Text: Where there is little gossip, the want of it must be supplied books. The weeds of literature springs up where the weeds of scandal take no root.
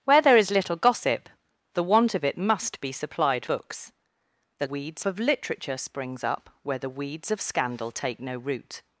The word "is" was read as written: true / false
true